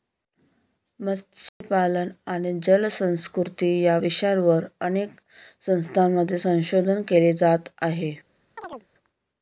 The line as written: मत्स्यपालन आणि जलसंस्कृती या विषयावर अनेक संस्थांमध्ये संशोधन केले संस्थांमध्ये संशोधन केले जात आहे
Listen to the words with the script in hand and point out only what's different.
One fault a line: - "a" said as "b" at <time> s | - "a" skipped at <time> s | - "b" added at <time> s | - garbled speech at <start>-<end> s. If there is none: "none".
- "संस्थांमध्ये संशोधन केले" skipped at 7.3 s